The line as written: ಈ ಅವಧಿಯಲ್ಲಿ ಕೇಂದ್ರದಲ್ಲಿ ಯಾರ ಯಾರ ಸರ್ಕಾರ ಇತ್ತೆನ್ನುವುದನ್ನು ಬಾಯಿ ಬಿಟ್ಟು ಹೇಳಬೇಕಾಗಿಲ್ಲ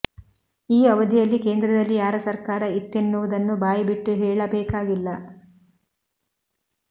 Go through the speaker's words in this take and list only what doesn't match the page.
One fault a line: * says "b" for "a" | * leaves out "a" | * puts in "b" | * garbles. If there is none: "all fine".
* leaves out "ಯಾರ"